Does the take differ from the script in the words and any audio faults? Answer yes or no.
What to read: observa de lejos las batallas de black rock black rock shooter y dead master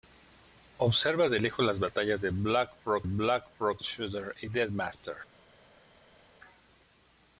no